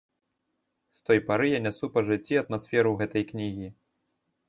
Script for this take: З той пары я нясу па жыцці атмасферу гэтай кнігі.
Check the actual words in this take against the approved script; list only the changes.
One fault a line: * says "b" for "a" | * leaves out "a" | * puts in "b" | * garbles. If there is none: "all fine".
all fine